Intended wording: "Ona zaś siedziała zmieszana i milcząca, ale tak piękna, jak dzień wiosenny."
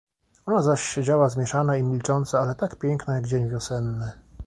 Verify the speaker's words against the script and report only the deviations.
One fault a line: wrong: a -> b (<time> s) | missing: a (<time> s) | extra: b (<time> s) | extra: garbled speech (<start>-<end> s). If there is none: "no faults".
no faults